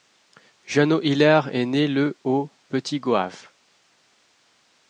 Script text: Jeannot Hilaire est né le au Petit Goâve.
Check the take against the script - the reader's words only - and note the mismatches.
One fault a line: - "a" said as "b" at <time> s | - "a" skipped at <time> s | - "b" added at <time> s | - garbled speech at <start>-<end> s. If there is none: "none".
none